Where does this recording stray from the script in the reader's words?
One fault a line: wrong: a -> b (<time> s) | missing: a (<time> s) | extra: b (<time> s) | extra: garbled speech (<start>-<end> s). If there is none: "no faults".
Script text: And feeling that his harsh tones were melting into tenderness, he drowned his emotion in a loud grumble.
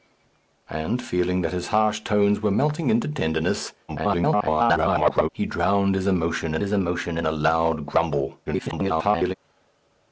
extra: garbled speech (3.9-5.3 s)
extra: his emotion in (6.6 s)
extra: garbled speech (8.5-9.3 s)